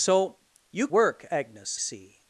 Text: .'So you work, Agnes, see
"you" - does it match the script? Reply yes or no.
yes